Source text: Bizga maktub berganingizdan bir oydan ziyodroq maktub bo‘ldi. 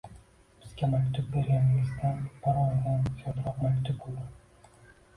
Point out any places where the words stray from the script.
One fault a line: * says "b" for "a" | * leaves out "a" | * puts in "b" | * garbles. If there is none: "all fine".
all fine